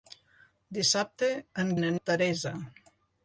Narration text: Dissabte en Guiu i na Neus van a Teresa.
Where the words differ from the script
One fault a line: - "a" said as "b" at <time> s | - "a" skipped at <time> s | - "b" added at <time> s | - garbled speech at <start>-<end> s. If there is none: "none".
- "Guiu" skipped at 1.7 s
- "Neus van" skipped at 1.9 s